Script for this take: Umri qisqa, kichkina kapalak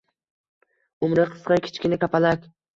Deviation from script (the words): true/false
false